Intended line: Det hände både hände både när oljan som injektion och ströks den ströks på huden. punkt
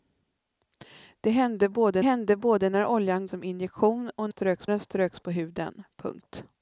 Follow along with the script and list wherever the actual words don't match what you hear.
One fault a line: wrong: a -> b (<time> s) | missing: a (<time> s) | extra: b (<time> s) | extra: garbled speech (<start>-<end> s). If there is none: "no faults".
no faults